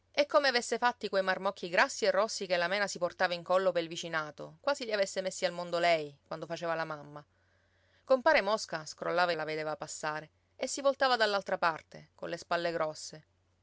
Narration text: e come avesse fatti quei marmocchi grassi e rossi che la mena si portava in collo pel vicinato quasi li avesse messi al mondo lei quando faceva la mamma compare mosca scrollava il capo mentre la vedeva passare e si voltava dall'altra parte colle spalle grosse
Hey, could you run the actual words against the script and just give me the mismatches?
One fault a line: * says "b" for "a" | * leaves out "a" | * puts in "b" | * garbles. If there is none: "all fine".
* leaves out "il capo mentre"